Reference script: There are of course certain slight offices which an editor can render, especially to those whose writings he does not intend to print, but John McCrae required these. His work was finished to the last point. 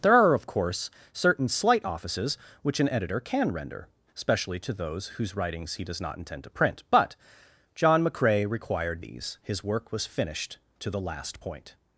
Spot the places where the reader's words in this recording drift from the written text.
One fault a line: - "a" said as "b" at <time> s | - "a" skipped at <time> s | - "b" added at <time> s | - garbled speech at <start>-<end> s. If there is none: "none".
none